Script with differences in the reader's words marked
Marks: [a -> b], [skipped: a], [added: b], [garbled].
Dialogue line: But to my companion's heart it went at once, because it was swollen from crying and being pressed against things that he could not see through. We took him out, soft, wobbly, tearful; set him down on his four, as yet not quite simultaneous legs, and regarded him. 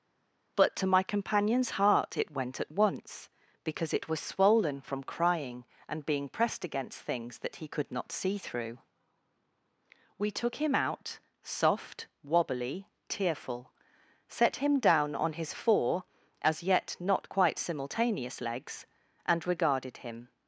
But to my companion's heart it went at once, because it was swollen from crying and being pressed against things that he could not see through. We took him out, soft, wobbly, tearful; set him down on his four, as yet not quite simultaneous legs, and regarded him.